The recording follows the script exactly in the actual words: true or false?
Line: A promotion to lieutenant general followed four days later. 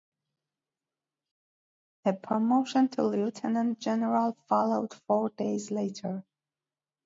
true